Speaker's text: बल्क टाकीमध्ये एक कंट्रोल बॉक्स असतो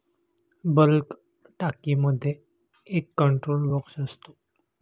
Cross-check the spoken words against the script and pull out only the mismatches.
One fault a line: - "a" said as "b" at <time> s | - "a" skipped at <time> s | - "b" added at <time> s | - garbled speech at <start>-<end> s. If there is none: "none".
none